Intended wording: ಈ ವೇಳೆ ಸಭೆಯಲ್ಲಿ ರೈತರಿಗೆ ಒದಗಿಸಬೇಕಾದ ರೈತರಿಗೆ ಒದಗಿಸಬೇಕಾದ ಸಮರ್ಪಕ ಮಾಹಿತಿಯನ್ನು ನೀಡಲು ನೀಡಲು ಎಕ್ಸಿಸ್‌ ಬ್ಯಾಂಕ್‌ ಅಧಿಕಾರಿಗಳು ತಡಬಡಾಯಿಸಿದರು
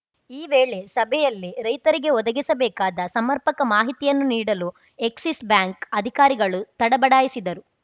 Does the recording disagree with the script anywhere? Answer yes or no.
yes